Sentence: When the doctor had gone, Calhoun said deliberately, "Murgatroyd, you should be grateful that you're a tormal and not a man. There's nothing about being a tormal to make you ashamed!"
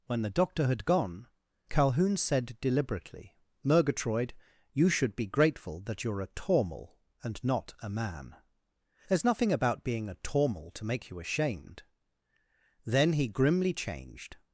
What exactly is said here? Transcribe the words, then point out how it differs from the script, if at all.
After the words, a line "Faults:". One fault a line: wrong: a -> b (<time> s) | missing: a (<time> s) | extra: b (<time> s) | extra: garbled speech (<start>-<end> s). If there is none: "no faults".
When the doctor had gone, Calhoun said deliberately, "Murgatroyd, you should be grateful that you're a tormal and not a man. There's nothing about being a tormal to make you ashamed!" Then he grimly changed
Faults:
extra: Then he grimly changed (12.9 s)